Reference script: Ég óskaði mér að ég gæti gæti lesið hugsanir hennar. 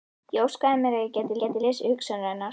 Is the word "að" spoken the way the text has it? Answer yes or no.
yes